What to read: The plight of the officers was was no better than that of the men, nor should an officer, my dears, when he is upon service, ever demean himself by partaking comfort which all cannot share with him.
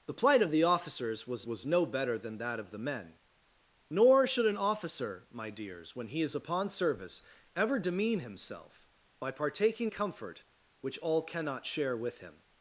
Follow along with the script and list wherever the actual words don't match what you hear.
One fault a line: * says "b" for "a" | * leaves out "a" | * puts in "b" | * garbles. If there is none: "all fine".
all fine